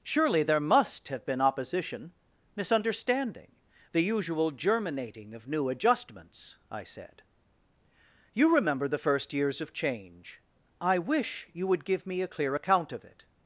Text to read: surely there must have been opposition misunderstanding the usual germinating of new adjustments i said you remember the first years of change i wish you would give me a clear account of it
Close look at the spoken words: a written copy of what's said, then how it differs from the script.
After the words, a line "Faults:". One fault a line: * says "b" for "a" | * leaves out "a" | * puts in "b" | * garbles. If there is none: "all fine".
surely there must have been opposition misunderstanding the usual germinating of new adjustments i said you remember the first years of change i wish you would give me a clear account of it
Faults:
all fine